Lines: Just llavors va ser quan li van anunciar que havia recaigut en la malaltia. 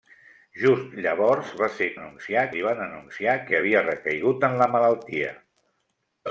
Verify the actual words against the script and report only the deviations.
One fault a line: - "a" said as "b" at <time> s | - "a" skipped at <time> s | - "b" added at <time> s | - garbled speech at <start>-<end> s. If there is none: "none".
- "quan" said as "anunciar" at 2.0 s